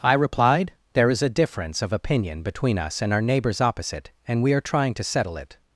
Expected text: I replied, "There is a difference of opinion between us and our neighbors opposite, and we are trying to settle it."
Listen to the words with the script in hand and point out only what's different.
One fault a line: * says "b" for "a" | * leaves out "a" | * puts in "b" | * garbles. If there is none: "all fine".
all fine